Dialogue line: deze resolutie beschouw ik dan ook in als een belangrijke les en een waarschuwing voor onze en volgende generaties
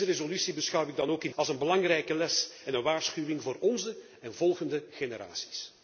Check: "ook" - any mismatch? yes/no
no